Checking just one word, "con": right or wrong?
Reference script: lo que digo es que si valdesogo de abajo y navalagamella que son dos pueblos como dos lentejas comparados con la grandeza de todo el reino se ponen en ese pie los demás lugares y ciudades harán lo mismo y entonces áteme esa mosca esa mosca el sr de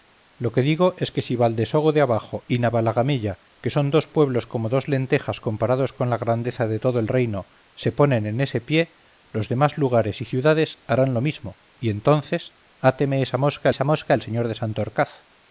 right